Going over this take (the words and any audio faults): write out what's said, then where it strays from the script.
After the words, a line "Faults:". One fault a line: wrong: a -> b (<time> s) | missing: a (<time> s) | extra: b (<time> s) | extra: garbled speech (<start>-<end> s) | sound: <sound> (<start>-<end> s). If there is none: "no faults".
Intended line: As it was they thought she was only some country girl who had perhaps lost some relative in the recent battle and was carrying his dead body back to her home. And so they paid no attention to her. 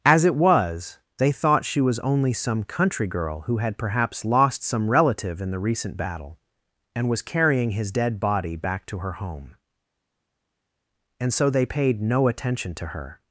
As it was they thought she was only some country girl who had perhaps lost some relative in the recent battle and was carrying his dead body back to her home. And so they paid no attention to her.
Faults:
no faults